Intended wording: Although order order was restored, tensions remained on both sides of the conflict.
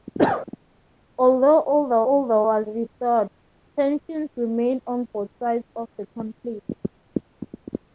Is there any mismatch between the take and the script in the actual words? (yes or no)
no